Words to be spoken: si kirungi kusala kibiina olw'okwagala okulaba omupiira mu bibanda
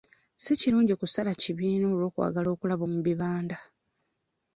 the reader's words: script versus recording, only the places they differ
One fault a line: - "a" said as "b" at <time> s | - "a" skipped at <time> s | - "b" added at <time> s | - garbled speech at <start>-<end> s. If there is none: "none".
- "omupiira" skipped at 2.8 s